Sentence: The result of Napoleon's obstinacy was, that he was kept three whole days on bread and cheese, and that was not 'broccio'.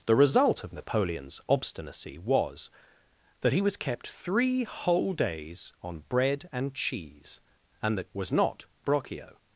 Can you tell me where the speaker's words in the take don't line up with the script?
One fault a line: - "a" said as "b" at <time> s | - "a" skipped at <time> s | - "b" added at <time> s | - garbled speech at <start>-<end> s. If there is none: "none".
none